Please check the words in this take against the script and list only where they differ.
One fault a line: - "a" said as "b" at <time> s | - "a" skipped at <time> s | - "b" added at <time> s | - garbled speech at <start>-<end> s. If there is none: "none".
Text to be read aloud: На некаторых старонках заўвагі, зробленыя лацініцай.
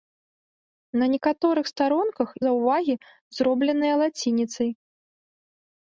none